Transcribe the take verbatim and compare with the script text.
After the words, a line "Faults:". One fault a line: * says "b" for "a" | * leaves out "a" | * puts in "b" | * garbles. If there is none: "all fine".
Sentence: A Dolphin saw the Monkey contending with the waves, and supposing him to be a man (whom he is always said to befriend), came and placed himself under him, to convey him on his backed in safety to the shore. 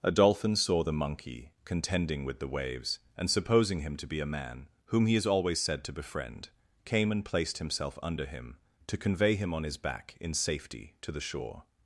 A Dolphin saw the Monkey contending with the waves, and supposing him to be a man (whom he is always said to befriend), came and placed himself under him, to convey him on his back in safety to the shore.
Faults:
* says "back" for "backed"